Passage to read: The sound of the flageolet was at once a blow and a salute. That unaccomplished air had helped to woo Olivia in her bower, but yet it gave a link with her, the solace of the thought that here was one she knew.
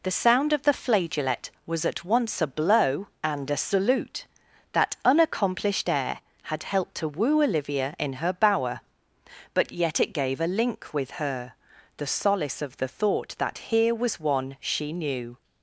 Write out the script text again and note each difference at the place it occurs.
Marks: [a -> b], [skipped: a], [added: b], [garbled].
The sound of the flageolet was at once a blow and a salute. That unaccomplished air had helped to woo Olivia in her bower, but yet it gave a link with her, the solace of the thought that here was one she knew.